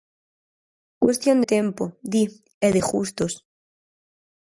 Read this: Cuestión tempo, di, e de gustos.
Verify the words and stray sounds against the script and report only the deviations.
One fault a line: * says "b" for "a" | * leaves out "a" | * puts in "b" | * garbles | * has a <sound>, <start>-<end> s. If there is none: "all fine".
all fine